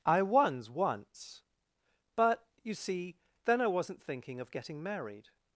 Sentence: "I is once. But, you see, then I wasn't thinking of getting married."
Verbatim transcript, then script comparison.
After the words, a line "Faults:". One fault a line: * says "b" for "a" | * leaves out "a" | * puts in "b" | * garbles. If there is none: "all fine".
"I was once. But, you see, then I wasn't thinking of getting married."
Faults:
* says "was" for "is"